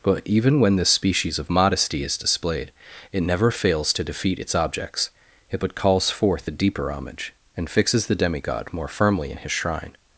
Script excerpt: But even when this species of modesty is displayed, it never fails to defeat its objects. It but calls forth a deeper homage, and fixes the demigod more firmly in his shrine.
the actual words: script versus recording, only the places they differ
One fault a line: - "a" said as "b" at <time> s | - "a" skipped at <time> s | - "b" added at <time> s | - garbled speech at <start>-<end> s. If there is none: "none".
none